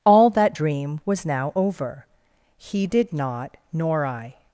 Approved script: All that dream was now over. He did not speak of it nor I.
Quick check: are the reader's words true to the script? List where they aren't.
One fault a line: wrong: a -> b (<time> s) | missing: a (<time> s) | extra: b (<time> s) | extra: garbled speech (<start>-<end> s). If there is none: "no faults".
missing: speak of it (3.6 s)